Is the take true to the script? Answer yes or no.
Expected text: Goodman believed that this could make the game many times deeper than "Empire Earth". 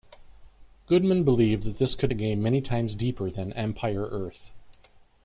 no